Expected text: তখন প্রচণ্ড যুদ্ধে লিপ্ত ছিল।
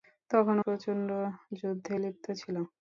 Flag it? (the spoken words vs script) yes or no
no